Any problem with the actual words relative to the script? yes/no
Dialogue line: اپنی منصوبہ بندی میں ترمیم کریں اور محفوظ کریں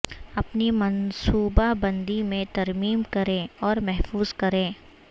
no